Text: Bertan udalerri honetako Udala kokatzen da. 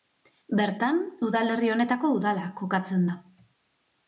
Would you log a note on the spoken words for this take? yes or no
no